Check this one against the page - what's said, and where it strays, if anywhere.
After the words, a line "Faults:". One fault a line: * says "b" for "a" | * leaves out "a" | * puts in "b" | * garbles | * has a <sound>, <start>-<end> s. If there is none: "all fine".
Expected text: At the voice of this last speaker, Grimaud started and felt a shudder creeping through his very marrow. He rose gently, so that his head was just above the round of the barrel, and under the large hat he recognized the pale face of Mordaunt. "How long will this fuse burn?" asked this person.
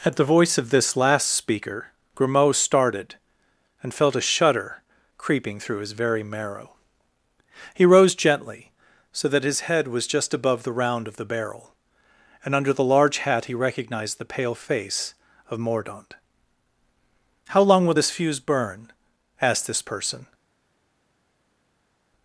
At the voice of this last speaker, Grimaud started and felt a shudder creeping through his very marrow. He rose gently, so that his head was just above the round of the barrel, and under the large hat he recognized the pale face of Mordaunt. "How long will this fuse burn?" asked this person.
Faults:
all fine